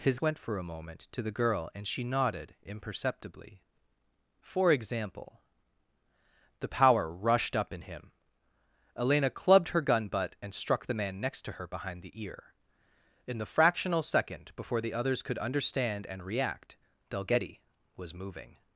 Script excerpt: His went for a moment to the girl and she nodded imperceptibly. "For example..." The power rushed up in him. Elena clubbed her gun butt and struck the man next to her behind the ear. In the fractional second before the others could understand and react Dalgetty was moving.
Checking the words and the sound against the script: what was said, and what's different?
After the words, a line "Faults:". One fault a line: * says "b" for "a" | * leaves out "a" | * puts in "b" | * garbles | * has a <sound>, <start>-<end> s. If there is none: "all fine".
His went for a moment to the girl and she nodded imperceptibly. "For example..." The power rushed up in him. Elena clubbed her gun butt and struck the man next to her behind the ear. In the fractional second before the others could understand and react Dalgetty was moving.
Faults:
all fine